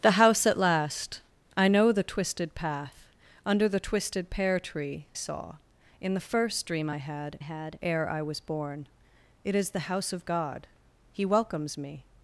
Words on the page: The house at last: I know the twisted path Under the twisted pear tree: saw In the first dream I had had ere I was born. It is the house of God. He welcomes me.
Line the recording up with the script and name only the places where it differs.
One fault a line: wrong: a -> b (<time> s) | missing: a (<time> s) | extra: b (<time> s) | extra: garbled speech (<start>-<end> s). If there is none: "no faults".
no faults